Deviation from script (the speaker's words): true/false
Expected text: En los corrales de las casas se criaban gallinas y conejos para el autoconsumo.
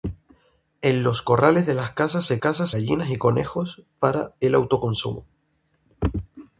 true